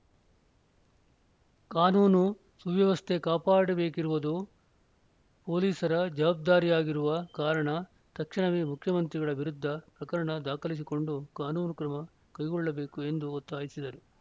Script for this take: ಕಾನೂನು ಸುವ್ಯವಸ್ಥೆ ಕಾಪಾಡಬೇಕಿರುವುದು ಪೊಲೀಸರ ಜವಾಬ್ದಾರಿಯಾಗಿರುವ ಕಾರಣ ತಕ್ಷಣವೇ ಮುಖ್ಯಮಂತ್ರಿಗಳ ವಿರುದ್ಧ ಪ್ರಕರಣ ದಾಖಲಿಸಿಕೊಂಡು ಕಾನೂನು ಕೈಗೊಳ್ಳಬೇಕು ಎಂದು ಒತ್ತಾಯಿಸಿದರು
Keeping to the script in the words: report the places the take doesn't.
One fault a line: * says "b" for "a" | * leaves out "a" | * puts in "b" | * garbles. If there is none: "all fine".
* puts in "ಕ್ರಮ"